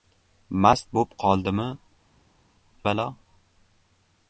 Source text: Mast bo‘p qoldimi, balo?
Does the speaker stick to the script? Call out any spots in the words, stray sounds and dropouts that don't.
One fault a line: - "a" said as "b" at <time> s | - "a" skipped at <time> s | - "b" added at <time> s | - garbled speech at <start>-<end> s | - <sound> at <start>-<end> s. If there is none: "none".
none